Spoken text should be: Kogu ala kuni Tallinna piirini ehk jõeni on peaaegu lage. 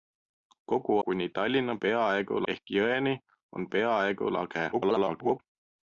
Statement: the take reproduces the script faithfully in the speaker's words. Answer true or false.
false